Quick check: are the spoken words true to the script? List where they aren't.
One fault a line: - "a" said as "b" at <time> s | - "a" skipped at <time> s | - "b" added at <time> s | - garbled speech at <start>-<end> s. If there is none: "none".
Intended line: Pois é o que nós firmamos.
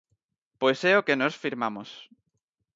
none